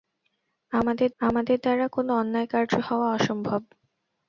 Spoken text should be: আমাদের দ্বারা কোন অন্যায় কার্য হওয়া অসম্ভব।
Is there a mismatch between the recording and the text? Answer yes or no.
yes